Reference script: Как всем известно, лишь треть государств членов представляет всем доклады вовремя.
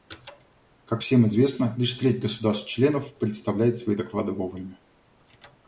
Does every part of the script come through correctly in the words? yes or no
no